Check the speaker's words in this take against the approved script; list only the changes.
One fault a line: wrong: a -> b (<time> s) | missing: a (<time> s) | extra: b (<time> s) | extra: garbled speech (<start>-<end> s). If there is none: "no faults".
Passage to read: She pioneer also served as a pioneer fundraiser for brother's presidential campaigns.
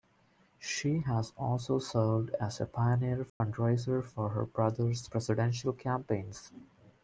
wrong: pioneer -> has (1.0 s)
extra: her (4.3 s)